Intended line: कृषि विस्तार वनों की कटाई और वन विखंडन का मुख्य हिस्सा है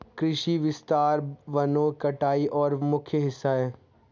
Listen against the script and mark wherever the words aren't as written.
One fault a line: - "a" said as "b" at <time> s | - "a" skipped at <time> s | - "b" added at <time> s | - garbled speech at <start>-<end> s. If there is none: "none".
- "की" skipped at 1.9 s
- "वन विखंडन का" skipped at 2.7 s